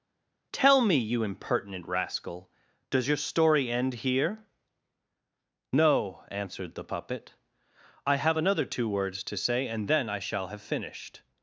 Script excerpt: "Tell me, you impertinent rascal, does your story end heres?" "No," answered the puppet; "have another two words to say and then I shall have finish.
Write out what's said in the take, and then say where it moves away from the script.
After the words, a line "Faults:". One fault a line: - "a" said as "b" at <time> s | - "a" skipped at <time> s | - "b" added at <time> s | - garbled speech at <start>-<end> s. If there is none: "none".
"Tell me, you impertinent rascal, does your story end here?" "No," answered the puppet; "I have another two words to say and then I shall have finished.
Faults:
- "heres" said as "here" at 3.9 s
- "I" added at 8.0 s
- "finish" said as "finished" at 10.6 s